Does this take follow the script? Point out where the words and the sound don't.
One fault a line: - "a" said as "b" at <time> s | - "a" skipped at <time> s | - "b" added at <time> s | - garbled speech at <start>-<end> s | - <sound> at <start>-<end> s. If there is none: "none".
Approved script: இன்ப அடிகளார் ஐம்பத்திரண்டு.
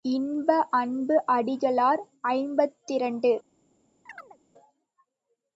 - "அன்பு" added at 0.7 s
- chirp at 4.1-4.4 s